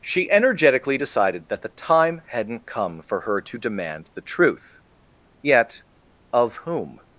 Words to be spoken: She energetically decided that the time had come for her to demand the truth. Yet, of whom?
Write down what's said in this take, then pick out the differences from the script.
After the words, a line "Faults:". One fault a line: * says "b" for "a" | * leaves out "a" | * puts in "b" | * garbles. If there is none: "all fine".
She energetically decided that the time hadn't come for her to demand the truth. Yet, of whom?
Faults:
* says "hadn't" for "had"